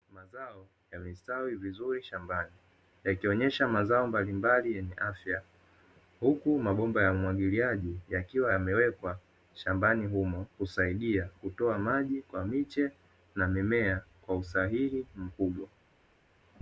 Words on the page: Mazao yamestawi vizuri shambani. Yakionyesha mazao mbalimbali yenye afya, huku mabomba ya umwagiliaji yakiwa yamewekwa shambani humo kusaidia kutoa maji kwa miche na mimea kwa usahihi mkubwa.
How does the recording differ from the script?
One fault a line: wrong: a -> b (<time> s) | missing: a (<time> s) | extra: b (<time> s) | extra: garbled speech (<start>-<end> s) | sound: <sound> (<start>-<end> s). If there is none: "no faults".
no faults